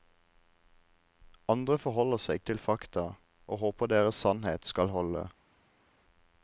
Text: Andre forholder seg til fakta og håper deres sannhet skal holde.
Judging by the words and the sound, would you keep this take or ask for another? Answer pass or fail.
pass